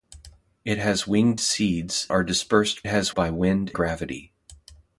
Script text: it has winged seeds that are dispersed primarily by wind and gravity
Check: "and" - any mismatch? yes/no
yes